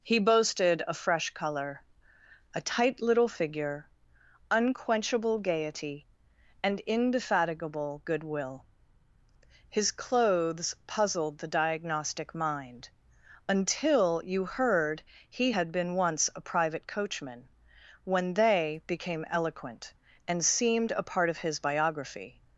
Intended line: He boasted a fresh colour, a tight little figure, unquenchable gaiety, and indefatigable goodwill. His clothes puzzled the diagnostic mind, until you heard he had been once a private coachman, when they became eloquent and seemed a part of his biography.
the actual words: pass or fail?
pass